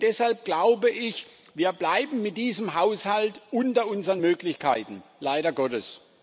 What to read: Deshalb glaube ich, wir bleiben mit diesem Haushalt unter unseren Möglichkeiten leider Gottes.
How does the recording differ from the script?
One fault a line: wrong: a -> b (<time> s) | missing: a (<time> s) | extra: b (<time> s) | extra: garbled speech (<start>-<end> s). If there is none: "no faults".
no faults